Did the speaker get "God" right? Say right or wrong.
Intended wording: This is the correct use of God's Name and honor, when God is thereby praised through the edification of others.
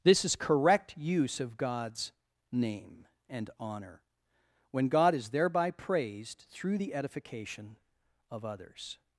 right